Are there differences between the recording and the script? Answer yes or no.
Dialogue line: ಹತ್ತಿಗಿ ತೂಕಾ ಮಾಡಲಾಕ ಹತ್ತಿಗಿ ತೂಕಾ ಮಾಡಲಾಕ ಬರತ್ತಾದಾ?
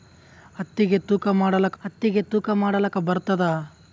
no